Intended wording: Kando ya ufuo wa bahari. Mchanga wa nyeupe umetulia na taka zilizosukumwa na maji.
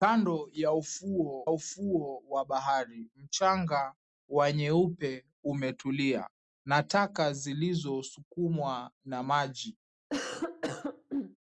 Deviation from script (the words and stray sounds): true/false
true